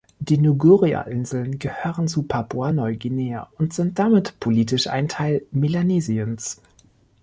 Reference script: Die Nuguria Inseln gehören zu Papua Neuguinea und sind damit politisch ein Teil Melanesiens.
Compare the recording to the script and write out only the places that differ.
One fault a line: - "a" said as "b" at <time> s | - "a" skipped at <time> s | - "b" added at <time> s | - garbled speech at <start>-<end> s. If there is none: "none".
none